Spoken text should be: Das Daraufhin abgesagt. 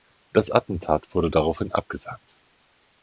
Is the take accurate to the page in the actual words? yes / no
no